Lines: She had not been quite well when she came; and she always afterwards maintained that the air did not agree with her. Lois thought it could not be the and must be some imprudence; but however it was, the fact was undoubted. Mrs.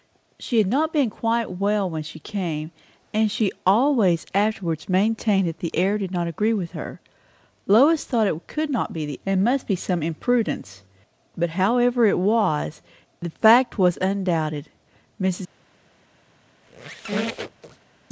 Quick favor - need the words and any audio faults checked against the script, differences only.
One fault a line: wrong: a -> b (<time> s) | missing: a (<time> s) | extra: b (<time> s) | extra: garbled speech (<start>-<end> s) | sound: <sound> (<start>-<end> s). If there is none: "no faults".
sound: squeak (16.6-17.9 s)